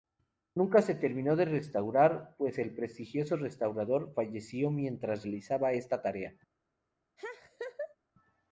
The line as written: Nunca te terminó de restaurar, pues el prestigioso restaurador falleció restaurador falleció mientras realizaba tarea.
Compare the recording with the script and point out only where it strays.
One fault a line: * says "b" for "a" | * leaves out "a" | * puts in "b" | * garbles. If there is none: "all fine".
* says "se" for "te"
* leaves out "restaurador falleció"
* puts in "esta"